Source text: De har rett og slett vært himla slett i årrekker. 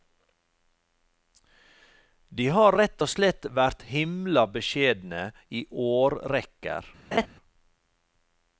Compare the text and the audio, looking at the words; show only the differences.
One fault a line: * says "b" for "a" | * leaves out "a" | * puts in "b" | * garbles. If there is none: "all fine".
* says "beskjedne" for "slett"